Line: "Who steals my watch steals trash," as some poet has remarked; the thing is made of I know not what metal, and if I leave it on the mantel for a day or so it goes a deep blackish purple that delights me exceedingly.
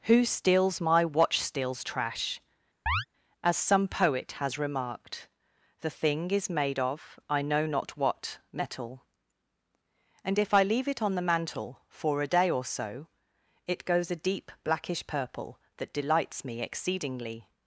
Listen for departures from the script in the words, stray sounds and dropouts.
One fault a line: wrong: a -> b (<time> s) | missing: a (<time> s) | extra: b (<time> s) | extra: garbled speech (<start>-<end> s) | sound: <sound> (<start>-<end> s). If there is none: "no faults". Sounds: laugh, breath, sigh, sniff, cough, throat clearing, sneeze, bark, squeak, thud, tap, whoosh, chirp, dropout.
sound: chirp (2.9-3.1 s)